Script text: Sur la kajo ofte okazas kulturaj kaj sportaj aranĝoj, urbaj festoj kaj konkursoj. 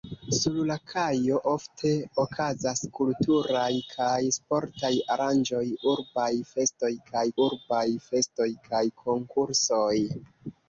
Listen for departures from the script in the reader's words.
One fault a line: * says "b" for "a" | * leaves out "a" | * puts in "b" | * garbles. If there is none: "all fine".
* puts in "urbaj festoj kaj"